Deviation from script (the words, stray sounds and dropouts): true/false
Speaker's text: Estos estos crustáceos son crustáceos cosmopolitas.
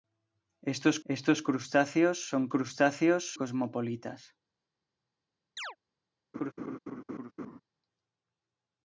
true